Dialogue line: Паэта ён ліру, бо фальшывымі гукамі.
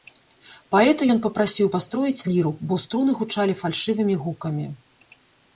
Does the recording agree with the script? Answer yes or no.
no